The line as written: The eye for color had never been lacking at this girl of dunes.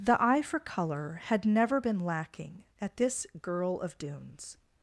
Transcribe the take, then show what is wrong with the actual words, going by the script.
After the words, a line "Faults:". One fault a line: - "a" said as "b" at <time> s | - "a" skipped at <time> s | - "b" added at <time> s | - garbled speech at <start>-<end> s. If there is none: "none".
The eye for color had never been lacking at this girl of dunes.
Faults:
none